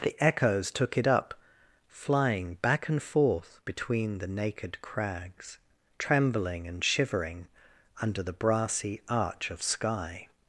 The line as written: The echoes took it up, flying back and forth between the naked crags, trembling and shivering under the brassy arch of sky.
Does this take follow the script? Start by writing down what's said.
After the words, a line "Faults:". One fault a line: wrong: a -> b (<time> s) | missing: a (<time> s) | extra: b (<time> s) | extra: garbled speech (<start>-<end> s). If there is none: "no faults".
The echoes took it up, flying back and forth between the naked crags, trembling and shivering under the brassy arch of sky.
Faults:
no faults